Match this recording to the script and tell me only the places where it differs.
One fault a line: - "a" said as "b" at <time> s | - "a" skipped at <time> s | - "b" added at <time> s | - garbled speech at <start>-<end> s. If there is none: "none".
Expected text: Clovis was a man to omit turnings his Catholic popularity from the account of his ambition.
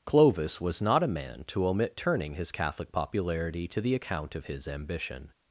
- "not" added at 0.8 s
- "turnings" said as "turning" at 1.9 s
- "from" said as "to" at 3.7 s